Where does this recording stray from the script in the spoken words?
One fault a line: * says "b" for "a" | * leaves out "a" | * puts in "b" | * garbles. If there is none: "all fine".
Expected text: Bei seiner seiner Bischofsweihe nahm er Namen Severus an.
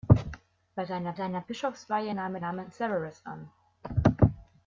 all fine